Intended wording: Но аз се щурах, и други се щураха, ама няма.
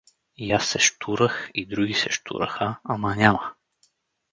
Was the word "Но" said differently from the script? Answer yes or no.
yes